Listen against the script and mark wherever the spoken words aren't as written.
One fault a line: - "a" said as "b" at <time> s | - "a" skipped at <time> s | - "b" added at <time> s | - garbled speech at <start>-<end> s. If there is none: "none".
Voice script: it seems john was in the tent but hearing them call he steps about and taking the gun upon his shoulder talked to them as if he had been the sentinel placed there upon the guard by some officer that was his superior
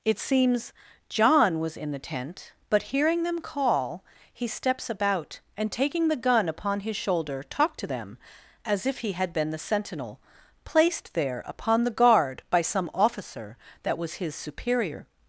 none